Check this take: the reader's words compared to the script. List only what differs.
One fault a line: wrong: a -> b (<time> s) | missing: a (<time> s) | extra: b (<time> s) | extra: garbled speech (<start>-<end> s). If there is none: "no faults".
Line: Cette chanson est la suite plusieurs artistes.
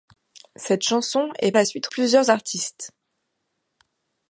no faults